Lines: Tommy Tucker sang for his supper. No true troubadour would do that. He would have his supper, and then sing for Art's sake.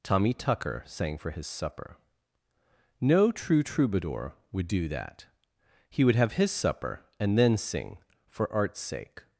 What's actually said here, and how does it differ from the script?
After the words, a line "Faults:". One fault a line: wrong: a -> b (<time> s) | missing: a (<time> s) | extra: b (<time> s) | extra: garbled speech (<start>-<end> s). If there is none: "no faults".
Tommy Tucker sang for his supper. No true troubadour would do that. He would have his supper, and then sing for Art's sake.
Faults:
no faults